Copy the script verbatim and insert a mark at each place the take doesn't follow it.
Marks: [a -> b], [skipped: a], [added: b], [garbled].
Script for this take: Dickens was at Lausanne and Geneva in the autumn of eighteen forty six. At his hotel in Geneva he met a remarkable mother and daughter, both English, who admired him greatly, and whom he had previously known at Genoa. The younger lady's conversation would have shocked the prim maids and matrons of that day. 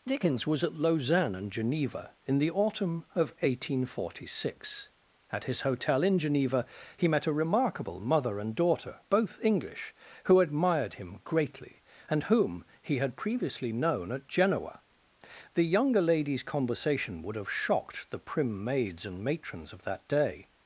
Dickens was at Lausanne and Geneva in the autumn of eighteen forty six. At his hotel in Geneva he met a remarkable mother and daughter, both English, who admired him greatly, and whom he had previously known at Genoa. The younger lady's conversation would have shocked the prim maids and matrons of that day.